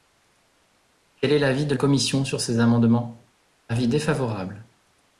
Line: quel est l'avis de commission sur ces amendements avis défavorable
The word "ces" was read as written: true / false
true